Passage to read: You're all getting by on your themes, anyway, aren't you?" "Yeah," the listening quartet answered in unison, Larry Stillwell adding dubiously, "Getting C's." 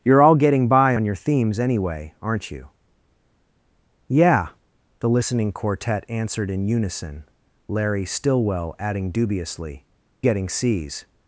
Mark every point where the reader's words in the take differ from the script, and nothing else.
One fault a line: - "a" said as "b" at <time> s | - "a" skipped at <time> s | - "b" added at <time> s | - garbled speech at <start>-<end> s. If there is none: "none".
none